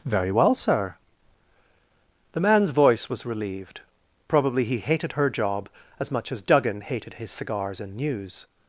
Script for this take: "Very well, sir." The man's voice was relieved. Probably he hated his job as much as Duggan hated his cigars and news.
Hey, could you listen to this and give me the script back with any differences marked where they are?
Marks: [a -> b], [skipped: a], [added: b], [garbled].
"Very well, sir." The man's voice was relieved. Probably he hated [his -> her] job as much as Duggan hated his cigars and news.